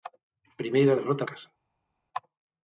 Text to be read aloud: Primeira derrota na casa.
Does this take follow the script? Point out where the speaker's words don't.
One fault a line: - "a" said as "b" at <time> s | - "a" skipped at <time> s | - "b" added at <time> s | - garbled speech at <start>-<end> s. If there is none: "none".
- "na" skipped at 1.2 s